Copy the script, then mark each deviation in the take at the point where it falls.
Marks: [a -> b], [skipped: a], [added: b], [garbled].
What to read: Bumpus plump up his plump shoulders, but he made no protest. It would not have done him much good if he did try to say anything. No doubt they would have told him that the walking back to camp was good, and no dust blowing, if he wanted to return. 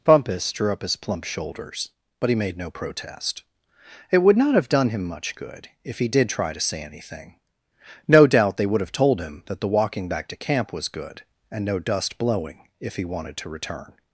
Bumpus [plump -> drew] up his plump shoulders, but he made no protest. It would not have done him much good if he did try to say anything. No doubt they would have told him that the walking back to camp was good, and no dust blowing, if he wanted to return.